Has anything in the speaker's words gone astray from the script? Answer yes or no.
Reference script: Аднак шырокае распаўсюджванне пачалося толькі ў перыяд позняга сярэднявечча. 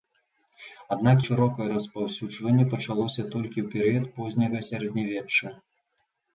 no